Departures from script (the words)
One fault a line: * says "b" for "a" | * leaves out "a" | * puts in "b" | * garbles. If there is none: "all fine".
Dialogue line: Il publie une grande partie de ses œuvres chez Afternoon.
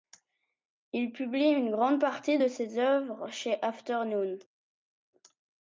all fine